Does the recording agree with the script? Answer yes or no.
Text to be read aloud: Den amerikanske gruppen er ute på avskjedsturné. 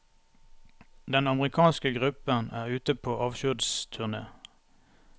yes